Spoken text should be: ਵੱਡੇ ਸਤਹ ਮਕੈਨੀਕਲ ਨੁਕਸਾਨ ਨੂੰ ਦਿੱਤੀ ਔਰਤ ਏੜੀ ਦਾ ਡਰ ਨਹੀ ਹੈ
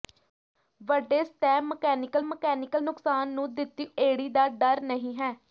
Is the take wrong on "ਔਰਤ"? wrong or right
wrong